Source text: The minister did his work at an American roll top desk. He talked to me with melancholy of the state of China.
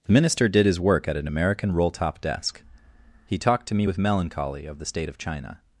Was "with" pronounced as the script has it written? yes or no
yes